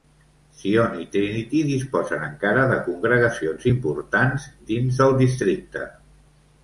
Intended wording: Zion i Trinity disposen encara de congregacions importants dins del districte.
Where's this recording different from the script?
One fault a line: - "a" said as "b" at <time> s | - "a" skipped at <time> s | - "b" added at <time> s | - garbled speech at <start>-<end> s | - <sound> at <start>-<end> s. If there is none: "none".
none